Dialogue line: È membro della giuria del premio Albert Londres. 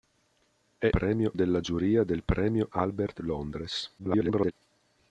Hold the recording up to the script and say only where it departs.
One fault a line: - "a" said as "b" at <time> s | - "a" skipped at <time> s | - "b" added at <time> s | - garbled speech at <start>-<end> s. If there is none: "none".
- "membro" said as "premio" at 0.9 s
- garbled speech at 4.0-4.5 s